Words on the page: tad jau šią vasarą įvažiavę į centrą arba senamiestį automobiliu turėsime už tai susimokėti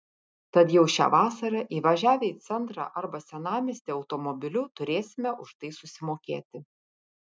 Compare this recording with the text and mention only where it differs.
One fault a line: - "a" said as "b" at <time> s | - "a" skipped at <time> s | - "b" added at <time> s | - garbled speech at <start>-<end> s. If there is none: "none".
none